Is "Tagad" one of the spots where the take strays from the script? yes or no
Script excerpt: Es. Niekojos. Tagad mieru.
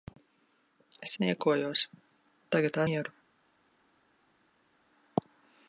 no